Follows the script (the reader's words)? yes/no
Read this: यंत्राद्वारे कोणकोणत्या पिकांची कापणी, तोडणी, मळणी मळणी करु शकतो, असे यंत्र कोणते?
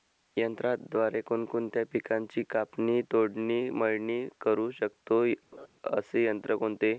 no